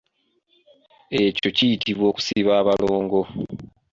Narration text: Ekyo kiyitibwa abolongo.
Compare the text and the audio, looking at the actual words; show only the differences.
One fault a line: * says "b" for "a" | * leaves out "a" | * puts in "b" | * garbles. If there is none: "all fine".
* puts in "okusiba"